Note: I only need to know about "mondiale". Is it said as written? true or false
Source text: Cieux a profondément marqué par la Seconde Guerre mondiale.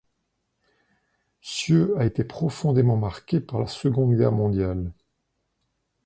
true